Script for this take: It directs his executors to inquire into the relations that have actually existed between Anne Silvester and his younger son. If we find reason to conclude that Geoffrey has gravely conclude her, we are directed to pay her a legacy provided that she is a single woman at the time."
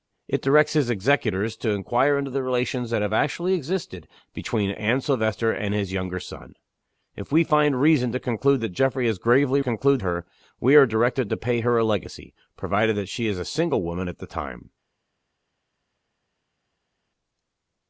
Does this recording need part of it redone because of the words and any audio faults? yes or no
no